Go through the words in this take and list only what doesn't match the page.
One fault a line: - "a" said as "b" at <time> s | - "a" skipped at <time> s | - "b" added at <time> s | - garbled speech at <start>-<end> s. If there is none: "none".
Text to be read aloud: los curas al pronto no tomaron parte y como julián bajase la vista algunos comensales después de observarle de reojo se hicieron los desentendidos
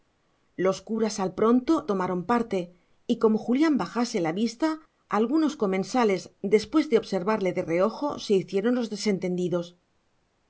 - "no" skipped at 1.7 s